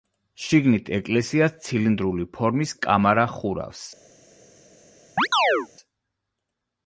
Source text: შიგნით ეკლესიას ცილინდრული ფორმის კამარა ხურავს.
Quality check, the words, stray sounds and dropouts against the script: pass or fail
fail